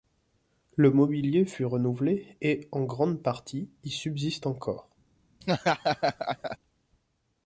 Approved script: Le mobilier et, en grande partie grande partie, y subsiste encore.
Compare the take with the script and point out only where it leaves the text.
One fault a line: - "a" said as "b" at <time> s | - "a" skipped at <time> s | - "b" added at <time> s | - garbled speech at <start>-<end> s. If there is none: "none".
- "fut renouvelé" added at 1.4 s
- "grande partie" skipped at 3.7 s